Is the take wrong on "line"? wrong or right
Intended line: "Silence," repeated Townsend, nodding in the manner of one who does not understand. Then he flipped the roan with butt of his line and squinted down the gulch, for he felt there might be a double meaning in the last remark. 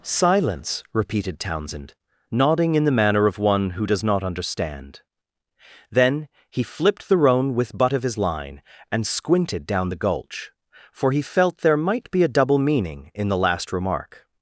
right